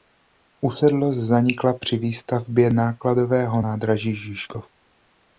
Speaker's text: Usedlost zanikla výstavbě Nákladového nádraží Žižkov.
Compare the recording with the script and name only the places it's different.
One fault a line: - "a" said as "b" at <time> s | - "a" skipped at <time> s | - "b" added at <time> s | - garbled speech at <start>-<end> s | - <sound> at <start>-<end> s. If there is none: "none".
- "při" added at 1.7 s